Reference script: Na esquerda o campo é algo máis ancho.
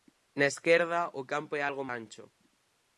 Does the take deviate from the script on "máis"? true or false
true